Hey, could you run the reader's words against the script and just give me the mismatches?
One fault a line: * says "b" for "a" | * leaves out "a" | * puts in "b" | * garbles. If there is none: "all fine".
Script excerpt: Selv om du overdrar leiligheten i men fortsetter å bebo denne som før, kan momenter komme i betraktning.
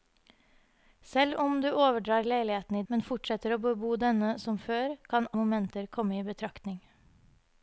all fine